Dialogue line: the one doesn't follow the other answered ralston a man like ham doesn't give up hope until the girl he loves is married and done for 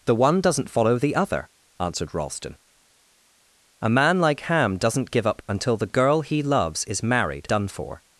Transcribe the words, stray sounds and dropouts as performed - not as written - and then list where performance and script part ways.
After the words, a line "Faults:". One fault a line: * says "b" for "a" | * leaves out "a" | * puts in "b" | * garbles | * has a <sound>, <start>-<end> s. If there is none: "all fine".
the one doesn't follow the other answered ralston a man like ham doesn't give up until the girl he loves is married done for
Faults:
* leaves out "hope"
* leaves out "and"